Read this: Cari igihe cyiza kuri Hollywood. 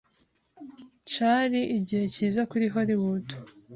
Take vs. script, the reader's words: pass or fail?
pass